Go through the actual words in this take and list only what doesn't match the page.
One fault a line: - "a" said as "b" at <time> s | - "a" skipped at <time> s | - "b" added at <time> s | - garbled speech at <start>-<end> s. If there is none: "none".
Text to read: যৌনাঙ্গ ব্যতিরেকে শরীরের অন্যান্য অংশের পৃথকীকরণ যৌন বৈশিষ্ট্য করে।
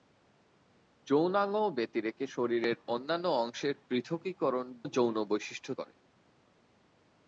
none